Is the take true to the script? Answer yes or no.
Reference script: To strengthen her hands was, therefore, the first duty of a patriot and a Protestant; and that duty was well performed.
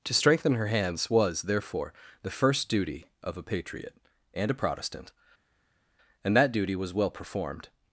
yes